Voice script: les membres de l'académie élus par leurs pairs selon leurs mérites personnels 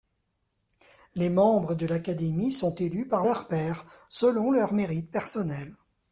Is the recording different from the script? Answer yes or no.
yes